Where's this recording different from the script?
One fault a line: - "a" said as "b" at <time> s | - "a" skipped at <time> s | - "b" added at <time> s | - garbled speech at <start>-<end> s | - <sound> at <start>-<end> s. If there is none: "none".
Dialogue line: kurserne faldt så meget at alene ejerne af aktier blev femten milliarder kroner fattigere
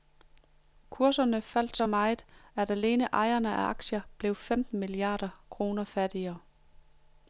none